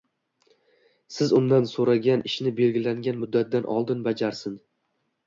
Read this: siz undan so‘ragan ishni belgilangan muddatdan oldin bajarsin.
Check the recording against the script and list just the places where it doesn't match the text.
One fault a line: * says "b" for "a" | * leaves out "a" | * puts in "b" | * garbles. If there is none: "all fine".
all fine